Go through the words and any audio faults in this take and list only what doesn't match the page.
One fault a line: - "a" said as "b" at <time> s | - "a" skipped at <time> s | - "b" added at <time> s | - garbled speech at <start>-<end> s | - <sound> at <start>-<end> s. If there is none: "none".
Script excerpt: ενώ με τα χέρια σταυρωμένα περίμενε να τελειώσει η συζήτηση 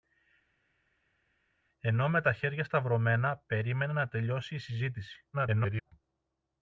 - garbled speech at 5.3-5.9 s